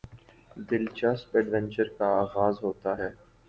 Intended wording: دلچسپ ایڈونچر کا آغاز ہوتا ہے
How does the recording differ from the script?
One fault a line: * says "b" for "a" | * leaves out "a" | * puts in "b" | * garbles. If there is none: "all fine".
all fine